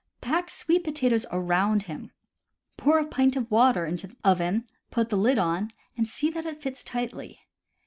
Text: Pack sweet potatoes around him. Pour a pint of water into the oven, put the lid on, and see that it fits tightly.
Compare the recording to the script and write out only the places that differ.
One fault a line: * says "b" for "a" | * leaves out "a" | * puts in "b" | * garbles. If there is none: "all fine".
all fine